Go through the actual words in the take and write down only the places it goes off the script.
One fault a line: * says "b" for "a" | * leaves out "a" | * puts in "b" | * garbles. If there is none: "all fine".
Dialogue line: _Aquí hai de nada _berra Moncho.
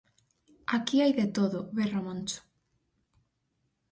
* says "todo" for "nada"